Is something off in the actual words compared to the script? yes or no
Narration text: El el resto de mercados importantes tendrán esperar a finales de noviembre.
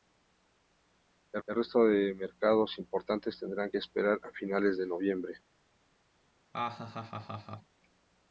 no